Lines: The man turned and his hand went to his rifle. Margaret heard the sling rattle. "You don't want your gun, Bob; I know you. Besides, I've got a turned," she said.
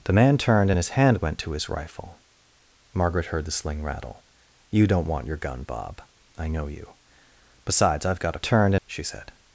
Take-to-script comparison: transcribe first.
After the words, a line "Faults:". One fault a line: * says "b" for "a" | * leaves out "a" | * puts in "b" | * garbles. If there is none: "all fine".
The man turned and his hand went to his rifle. Margaret heard the sling rattle. "You don't want your gun, Bob; I know you. Besides, I've got a turned," she said.
Faults:
all fine